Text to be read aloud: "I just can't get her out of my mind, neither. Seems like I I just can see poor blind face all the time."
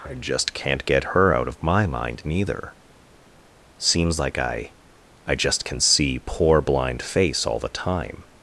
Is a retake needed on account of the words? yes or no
no